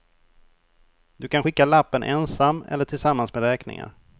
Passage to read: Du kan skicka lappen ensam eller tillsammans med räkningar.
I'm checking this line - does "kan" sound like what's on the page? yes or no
yes